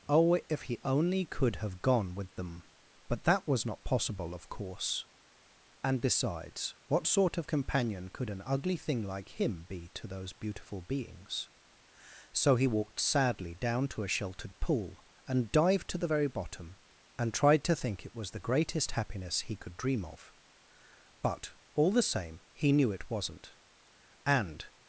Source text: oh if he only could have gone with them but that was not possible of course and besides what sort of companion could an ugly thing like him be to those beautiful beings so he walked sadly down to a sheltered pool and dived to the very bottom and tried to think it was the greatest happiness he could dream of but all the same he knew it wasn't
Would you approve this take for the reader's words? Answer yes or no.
no